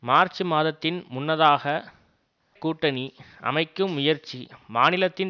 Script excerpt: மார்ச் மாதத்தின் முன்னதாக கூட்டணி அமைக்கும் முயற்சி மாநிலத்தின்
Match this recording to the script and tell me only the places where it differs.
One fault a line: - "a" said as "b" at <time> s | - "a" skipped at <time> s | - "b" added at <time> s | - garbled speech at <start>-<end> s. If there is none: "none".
none